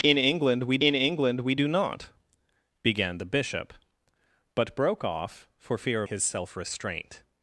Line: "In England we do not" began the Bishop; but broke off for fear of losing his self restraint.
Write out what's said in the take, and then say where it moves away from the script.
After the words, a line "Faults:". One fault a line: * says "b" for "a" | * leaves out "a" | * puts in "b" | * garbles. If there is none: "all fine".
"In England we in England we do not" began the Bishop; but broke off for fear his self restraint.
Faults:
* puts in "in England we"
* leaves out "of losing"